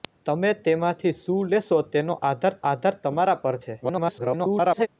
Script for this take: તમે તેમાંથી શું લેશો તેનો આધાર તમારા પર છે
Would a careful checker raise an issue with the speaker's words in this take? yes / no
yes